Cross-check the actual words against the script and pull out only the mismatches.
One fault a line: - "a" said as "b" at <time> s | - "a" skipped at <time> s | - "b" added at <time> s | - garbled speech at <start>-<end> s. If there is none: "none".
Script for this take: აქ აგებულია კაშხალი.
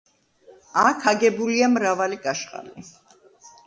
- "მრავალი" added at 1.8 s